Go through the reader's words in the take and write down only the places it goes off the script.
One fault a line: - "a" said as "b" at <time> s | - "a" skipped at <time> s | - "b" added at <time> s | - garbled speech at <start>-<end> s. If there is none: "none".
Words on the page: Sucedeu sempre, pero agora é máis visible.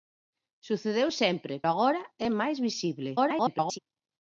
- "pero" skipped at 1.5 s
- garbled speech at 3.2-3.8 s